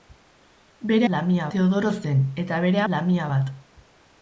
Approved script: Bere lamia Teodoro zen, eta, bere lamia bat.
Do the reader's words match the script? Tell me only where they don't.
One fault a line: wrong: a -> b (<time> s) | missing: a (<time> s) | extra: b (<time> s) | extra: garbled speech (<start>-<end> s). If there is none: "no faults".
no faults